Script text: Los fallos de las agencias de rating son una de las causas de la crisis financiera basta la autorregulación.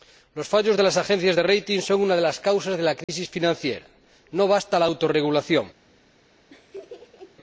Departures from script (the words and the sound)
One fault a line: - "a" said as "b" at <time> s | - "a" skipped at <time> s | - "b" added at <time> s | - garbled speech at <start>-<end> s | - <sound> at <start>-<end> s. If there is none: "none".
- dropout at 3.0-3.1 s
- "no" added at 4.3 s
- laugh at 6.5-7.4 s